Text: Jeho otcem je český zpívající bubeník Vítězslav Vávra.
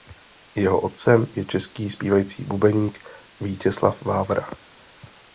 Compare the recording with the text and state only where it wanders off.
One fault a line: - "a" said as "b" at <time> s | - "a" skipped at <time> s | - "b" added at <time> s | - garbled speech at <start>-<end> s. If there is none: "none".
none